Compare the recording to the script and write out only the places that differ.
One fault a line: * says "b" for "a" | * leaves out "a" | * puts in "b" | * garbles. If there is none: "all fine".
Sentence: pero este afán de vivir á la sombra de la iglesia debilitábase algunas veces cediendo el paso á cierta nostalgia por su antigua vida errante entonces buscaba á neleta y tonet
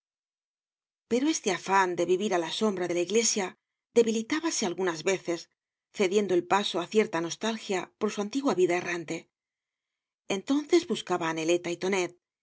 all fine